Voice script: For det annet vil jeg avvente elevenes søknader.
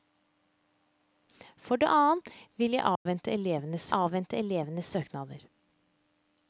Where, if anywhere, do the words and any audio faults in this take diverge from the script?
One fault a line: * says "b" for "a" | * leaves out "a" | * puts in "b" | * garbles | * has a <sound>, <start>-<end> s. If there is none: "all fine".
* has a dropout, 3.0-3.1 s
* puts in "avvente elevenes"